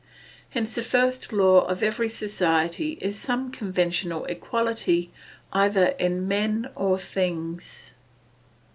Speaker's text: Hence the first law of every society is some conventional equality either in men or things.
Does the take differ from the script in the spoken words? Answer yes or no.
no